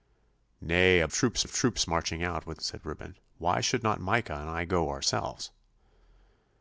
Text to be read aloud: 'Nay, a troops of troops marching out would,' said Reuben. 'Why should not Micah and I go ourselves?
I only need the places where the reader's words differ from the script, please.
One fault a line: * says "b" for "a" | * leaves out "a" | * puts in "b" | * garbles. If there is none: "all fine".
all fine